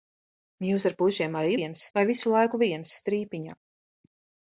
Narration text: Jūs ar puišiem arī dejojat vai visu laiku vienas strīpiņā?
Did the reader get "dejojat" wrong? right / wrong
wrong